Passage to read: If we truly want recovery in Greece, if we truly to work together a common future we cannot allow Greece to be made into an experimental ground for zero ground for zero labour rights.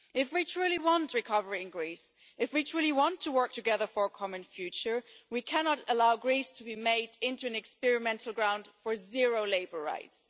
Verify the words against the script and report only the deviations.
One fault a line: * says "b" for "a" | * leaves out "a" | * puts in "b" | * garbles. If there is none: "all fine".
* puts in "want"
* puts in "for"
* leaves out "ground for zero"